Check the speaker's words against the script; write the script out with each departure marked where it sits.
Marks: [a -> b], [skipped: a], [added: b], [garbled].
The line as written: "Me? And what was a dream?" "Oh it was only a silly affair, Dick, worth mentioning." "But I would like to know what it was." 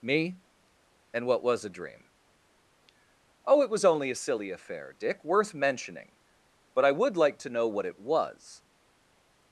"Me? And what was a dream?" "Oh it was only a silly affair, Dick, worth mentioning." "But I would like to know what it was."